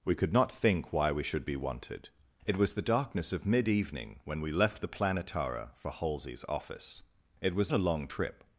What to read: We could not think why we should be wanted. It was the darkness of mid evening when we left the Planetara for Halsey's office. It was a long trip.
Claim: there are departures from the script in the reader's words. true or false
false